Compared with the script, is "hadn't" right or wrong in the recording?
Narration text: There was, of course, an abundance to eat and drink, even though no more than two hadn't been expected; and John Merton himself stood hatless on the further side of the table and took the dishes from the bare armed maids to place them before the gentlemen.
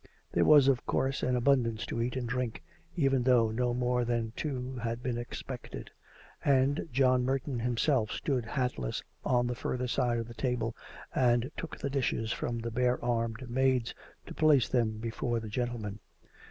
wrong